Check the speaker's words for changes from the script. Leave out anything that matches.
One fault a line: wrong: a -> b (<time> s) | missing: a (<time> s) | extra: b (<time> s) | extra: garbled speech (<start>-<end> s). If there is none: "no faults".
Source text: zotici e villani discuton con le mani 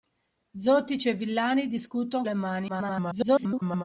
missing: con (2.2 s)
extra: garbled speech (2.7-3.8 s)